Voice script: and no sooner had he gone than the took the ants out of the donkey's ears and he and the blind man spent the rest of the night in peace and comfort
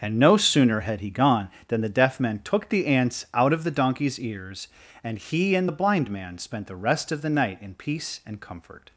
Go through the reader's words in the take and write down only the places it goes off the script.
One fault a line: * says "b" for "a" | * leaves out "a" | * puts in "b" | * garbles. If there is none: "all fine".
* puts in "deaf man"